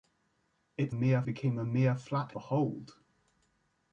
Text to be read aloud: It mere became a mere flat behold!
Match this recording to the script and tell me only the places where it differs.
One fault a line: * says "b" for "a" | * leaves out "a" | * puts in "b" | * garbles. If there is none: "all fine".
all fine